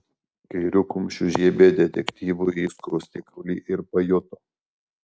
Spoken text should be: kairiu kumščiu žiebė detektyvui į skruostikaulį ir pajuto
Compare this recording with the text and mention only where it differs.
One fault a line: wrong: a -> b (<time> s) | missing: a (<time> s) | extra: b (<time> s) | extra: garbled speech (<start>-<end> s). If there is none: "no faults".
no faults